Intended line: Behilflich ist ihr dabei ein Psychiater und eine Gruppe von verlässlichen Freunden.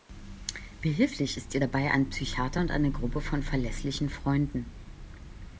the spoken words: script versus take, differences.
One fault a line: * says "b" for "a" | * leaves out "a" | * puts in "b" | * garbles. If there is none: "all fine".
all fine